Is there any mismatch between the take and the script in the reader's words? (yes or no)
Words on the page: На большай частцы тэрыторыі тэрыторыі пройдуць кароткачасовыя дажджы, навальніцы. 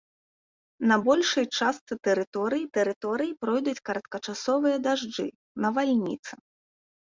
no